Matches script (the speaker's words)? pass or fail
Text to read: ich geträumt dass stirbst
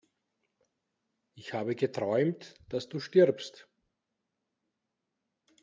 fail